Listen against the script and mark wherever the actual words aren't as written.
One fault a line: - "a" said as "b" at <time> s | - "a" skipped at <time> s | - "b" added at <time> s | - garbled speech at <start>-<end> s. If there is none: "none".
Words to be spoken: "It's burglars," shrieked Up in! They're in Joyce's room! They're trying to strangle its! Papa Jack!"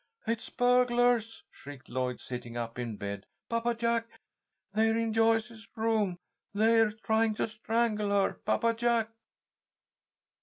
- "Lloyd sitting" added at 1.9 s
- "bed Papa Jack" added at 2.9 s
- "its" said as "her" at 8.1 s